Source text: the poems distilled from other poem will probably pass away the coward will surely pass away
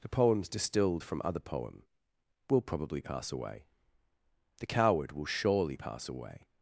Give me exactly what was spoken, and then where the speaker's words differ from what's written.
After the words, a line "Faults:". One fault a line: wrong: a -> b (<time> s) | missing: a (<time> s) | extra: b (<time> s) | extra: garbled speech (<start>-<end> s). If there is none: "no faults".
the poems distilled from other poem will probably pass away the coward will surely pass away
Faults:
no faults